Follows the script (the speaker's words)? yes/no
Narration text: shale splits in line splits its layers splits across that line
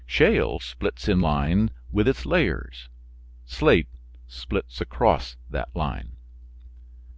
no